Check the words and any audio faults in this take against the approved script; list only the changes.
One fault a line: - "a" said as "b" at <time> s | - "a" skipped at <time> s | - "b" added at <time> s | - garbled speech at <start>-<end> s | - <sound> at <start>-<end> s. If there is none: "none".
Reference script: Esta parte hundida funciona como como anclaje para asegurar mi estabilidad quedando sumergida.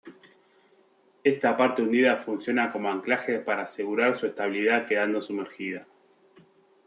- "como" skipped at 2.9 s
- "mi" said as "su" at 4.1 s